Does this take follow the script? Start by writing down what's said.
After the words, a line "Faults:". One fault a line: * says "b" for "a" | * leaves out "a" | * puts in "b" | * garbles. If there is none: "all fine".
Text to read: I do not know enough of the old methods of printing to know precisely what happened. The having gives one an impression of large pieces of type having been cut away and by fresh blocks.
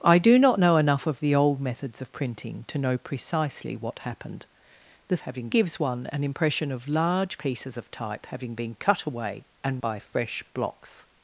I do not know enough of the old methods of printing to know precisely what happened. The having gives one an impression of large pieces of type having been cut away and by fresh blocks.
Faults:
all fine